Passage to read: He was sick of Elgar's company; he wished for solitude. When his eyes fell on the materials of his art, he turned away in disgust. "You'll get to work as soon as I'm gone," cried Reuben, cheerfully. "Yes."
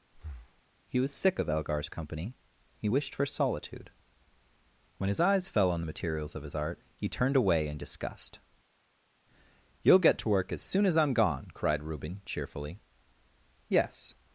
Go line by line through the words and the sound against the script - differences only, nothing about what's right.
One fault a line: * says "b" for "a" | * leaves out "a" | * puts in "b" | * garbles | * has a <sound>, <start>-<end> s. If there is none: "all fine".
* has a breath, 0.1-0.6 s